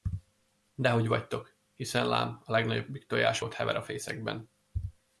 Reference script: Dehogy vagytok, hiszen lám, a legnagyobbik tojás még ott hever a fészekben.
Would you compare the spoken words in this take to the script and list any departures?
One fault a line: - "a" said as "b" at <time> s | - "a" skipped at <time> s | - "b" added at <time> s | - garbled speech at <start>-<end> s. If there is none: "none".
- "még" skipped at 3.4 s